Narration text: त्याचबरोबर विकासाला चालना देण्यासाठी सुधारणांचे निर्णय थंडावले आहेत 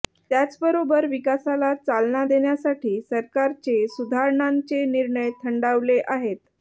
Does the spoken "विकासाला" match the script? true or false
true